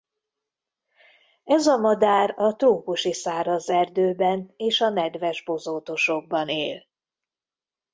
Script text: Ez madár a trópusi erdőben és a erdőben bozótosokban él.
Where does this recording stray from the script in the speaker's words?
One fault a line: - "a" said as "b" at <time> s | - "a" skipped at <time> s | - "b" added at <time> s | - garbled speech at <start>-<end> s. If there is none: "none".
- "a" added at 1.7 s
- "száraz" added at 3.1 s
- "erdőben" said as "nedves" at 4.9 s